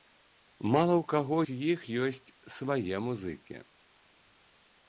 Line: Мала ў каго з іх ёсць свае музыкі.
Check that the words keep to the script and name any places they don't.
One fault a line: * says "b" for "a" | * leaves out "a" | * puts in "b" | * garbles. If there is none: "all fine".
all fine